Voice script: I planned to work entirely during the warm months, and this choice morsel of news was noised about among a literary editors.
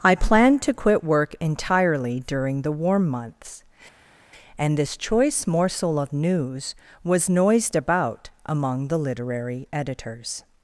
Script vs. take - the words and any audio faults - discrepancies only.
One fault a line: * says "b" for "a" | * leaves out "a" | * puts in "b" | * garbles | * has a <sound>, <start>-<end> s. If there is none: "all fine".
* puts in "quit"
* says "the" for "a"